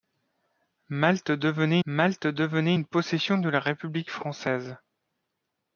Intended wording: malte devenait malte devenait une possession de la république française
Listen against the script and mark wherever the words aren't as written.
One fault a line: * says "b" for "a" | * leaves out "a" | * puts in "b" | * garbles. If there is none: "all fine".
all fine